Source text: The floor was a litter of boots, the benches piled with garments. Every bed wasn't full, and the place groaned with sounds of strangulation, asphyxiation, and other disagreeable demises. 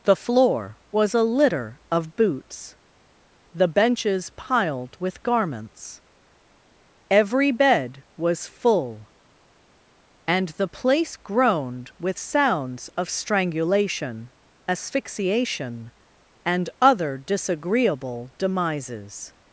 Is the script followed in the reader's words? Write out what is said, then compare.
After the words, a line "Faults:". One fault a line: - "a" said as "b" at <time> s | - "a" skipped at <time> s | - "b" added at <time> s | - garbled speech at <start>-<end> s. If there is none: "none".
The floor was a litter of boots, the benches piled with garments. Every bed was full, and the place groaned with sounds of strangulation, asphyxiation, and other disagreeable demises.
Faults:
- "wasn't" said as "was" at 8.2 s